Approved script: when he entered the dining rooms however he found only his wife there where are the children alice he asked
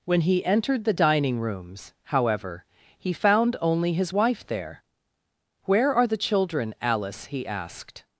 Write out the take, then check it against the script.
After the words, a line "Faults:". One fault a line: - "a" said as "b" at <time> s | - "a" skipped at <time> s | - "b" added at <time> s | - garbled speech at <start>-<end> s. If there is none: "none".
when he entered the dining rooms however he found only his wife there where are the children alice he asked
Faults:
none